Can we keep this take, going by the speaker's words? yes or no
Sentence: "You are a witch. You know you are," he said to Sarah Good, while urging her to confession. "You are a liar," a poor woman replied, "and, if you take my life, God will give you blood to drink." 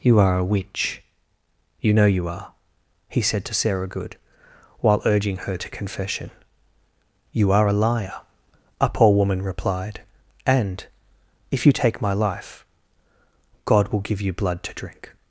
yes